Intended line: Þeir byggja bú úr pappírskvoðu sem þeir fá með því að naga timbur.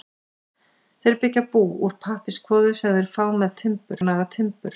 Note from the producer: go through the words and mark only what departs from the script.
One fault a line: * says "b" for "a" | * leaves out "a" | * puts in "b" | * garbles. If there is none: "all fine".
* says "timbur" for "því"